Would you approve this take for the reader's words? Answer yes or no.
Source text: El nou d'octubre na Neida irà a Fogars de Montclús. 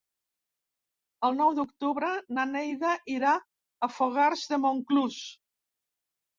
yes